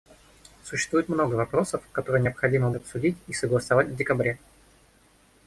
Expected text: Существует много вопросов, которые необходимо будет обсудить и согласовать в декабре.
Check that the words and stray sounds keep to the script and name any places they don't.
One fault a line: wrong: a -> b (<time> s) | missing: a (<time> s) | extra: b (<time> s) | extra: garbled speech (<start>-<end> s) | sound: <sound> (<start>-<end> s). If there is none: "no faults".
missing: будет (2.7 s)